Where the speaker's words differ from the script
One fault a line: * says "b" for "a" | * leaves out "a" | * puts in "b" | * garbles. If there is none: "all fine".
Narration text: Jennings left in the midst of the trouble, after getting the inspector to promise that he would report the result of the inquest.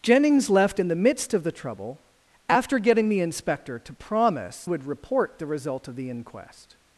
* leaves out "that he"